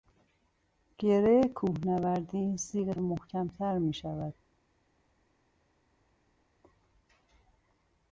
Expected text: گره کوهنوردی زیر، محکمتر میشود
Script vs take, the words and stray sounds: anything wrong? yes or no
no